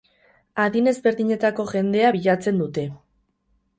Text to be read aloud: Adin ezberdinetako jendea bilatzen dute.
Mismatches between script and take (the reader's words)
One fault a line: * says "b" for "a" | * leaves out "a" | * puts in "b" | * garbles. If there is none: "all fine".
all fine